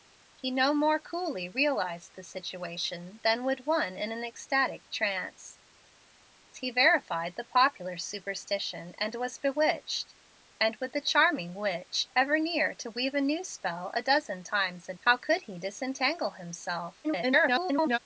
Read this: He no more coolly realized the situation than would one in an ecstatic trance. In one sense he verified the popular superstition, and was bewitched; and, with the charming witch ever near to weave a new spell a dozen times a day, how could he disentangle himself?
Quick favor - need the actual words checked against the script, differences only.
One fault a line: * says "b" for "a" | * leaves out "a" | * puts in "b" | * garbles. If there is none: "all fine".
* leaves out "In one sense"
* leaves out "day"
* garbles